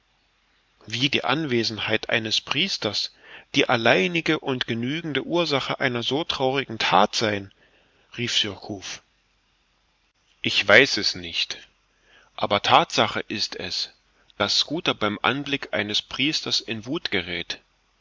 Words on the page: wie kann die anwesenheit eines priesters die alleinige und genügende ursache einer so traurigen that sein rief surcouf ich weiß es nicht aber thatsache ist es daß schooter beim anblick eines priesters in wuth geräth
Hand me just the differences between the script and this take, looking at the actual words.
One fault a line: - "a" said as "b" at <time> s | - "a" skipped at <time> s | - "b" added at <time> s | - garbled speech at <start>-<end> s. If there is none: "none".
- "kann" skipped at 1.1 s